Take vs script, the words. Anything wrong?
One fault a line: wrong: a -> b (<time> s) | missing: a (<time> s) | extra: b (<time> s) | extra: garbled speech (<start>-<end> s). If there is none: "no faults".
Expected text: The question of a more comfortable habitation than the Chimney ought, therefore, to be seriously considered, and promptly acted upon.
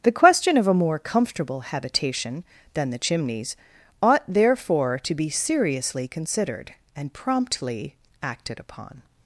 wrong: Chimney -> Chimneys (3.0 s)